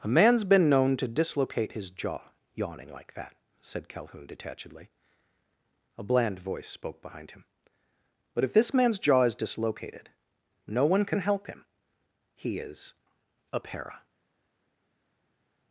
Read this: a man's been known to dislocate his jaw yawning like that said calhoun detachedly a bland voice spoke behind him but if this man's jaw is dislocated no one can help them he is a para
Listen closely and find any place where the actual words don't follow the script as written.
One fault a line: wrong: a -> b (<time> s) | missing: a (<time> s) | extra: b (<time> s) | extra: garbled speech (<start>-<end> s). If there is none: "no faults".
wrong: them -> him (11.5 s)